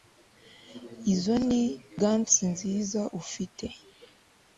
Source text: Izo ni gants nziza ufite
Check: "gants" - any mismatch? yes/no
no